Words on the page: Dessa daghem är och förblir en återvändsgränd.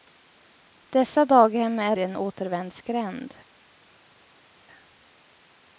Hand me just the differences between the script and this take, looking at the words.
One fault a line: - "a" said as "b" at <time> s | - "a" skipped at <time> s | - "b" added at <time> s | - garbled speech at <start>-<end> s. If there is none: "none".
- "och förblir" skipped at 2.0 s